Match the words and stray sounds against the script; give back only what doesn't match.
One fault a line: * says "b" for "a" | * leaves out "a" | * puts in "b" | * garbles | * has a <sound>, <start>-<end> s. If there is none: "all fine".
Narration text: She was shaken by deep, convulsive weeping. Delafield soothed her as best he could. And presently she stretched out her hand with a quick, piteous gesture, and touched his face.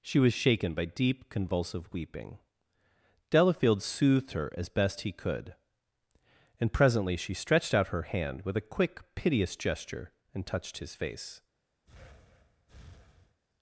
* has a breath, 11.9-13.4 s